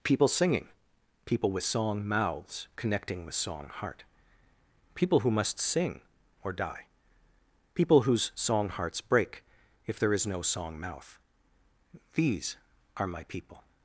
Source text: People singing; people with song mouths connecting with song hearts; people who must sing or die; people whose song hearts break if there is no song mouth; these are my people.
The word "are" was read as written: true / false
true